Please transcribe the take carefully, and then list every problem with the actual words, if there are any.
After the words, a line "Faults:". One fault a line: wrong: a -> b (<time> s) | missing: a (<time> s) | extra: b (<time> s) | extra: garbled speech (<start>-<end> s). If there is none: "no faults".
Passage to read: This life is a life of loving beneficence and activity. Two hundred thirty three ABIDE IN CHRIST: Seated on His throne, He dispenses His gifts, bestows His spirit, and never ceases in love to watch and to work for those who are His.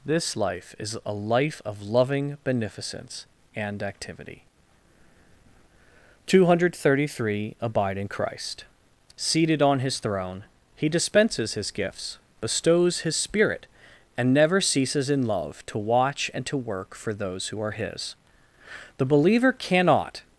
This life is a life of loving beneficence and activity. Two hundred thirty three ABIDE IN CHRIST: Seated on His throne, He dispenses His gifts, bestows His spirit, and never ceases in love to watch and to work for those who are His. The believer cannot
Faults:
extra: The believer cannot (19.0 s)